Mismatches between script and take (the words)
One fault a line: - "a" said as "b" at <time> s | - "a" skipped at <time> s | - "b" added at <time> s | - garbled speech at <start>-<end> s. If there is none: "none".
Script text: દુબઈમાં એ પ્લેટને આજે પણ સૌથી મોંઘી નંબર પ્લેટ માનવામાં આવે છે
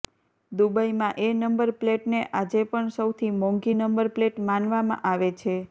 - "નંબર" added at 1.3 s